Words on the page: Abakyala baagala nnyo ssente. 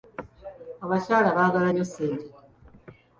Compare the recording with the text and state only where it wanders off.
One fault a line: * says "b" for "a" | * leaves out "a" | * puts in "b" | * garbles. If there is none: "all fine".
all fine